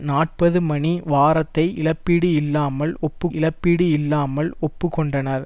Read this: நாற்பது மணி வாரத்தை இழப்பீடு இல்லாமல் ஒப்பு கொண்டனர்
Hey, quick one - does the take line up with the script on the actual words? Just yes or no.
no